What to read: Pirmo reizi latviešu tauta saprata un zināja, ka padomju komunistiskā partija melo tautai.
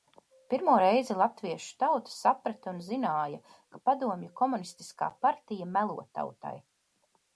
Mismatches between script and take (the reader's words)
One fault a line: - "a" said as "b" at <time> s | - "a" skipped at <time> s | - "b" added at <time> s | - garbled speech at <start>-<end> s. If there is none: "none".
none